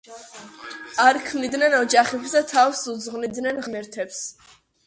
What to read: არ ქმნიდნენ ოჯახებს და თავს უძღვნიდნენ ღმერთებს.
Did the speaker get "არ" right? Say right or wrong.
right